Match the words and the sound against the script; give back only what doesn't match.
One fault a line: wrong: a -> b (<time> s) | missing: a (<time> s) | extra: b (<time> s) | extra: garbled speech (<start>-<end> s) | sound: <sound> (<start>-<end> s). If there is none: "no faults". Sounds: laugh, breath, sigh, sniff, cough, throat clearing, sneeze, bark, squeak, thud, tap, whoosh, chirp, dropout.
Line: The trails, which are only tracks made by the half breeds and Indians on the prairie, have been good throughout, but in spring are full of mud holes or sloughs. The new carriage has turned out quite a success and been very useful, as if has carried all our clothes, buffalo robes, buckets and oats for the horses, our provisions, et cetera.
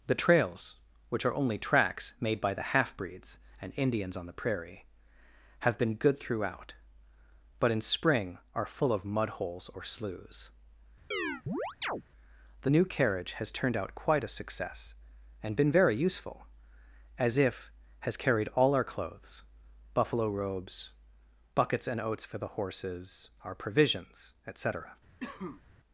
sound: chirp (11.1-12.0 s)
sound: cough (25.2-25.6 s)